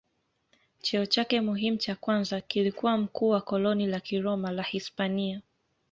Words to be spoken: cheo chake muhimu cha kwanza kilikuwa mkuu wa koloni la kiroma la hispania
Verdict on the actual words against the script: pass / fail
pass